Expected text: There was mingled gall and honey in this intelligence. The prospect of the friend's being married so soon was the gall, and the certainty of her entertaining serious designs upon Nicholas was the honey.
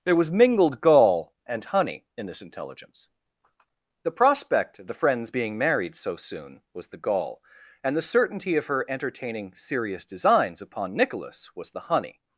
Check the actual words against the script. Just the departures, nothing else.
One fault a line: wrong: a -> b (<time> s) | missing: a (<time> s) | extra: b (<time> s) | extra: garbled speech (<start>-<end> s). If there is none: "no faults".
no faults